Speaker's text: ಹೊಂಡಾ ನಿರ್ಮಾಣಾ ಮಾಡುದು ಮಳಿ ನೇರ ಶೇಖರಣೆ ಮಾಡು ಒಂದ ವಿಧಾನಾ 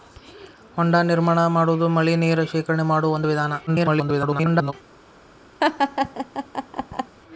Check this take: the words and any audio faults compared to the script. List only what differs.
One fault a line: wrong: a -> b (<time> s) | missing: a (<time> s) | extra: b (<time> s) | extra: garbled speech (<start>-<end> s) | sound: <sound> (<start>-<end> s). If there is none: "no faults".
extra: garbled speech (3.7-4.7 s)
sound: laugh (5.6-7.1 s)